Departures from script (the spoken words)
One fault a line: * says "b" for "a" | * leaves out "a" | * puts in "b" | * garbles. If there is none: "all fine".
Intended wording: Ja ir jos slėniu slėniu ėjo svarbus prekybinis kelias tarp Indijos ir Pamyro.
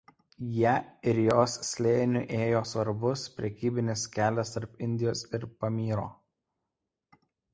* leaves out "slėniu"